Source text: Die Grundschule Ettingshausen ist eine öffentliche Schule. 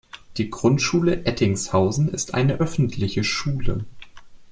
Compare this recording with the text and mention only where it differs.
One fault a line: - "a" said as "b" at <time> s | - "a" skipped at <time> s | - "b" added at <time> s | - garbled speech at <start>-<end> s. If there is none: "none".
none